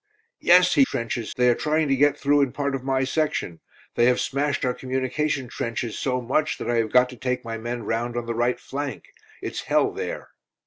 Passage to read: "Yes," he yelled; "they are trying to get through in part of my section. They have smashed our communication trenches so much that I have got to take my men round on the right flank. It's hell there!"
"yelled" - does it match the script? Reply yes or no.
no